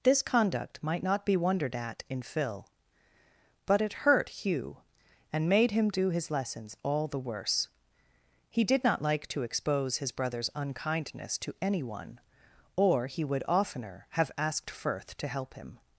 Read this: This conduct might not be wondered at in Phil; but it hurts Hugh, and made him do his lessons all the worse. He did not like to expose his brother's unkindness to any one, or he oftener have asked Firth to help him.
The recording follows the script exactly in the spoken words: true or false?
false